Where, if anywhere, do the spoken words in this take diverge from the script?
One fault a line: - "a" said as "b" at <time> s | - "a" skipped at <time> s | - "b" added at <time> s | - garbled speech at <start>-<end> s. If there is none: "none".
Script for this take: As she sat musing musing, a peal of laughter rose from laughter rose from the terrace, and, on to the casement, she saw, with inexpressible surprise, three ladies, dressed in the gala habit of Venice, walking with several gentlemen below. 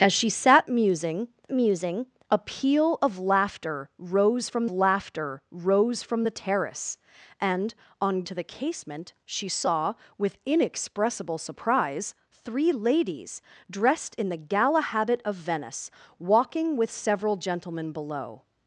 none